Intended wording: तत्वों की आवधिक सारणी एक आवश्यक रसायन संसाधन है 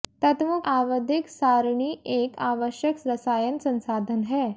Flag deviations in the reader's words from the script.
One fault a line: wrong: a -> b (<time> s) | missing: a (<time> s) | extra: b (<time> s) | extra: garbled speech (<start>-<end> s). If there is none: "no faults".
missing: की (0.6 s)